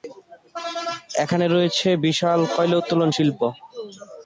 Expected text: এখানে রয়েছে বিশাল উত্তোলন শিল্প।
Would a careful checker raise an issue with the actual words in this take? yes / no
yes